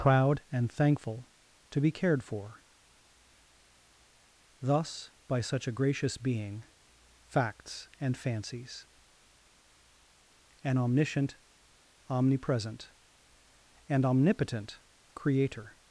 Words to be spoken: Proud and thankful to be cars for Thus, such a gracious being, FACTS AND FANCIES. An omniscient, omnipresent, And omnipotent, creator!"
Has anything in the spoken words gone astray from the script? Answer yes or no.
yes